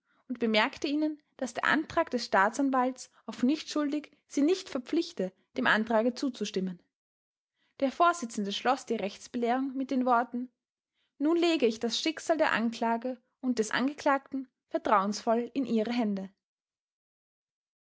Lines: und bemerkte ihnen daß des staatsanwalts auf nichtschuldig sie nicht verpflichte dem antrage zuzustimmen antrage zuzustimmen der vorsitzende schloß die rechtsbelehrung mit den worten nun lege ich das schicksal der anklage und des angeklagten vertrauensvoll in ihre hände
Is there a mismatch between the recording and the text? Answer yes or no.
yes